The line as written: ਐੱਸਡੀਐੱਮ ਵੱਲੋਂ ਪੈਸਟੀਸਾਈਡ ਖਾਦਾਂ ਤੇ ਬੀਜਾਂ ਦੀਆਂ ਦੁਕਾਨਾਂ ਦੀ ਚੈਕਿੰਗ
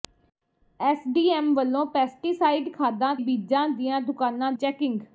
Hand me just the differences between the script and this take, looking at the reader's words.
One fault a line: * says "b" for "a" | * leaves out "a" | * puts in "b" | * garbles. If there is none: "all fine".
* leaves out "ਤੇ"
* leaves out "ਦੀ"